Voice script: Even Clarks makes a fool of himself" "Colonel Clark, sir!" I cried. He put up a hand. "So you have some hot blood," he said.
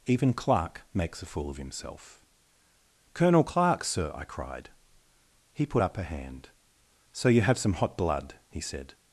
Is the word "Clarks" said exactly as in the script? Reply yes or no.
no